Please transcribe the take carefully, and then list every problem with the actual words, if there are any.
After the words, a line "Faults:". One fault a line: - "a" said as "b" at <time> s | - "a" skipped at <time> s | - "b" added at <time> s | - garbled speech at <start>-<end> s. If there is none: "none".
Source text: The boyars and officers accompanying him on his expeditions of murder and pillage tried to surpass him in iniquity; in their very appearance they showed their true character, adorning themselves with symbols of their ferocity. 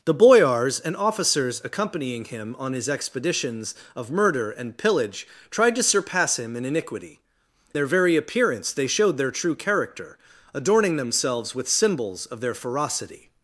The boyars and officers accompanying him on his expeditions of murder and pillage tried to surpass him in iniquity; their very appearance they showed their true character, adorning themselves with symbols of their ferocity.
Faults:
- "in" skipped at 7.2 s